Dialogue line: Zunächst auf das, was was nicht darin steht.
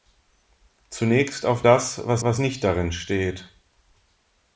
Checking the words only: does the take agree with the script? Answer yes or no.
yes